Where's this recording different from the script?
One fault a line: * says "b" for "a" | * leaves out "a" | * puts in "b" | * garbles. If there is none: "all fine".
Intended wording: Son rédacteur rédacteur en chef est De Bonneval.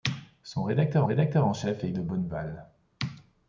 all fine